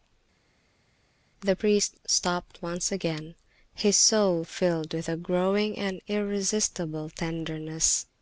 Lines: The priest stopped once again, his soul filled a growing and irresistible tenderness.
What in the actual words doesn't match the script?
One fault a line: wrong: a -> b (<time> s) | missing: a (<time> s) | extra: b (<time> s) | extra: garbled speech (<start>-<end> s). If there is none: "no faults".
extra: with (4.9 s)